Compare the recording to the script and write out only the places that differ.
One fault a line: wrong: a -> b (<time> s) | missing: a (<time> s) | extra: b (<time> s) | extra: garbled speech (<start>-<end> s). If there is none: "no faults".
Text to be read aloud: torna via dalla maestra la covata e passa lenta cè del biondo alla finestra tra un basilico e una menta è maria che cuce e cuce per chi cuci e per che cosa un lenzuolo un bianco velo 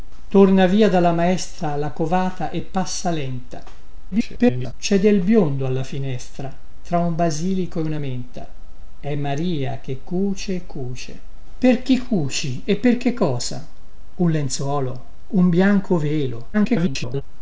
extra: garbled speech (4.1-4.7 s)
extra: garbled speech (16.5-17.2 s)